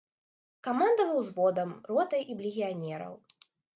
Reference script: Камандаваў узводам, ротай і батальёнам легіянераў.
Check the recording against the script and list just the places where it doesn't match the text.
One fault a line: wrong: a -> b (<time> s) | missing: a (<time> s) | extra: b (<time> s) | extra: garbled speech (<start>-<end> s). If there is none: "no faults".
missing: батальёнам (2.4 s)